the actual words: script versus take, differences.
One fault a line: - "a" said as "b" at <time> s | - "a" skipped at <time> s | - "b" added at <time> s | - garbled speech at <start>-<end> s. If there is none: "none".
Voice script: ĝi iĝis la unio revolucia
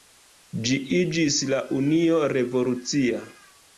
none